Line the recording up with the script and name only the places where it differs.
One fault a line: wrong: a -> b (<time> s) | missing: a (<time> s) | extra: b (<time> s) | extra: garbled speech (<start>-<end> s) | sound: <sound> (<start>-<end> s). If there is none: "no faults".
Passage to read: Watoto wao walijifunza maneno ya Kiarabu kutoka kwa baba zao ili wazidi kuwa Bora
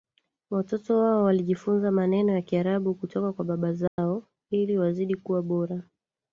sound: dropout (3.9-4.0 s)